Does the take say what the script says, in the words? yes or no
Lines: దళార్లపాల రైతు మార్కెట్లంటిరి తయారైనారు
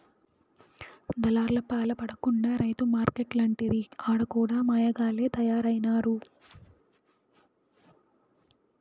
no